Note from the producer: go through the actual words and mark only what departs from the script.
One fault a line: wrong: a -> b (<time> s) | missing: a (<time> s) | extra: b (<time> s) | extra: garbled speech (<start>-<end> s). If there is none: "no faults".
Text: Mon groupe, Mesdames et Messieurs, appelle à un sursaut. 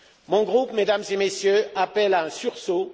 no faults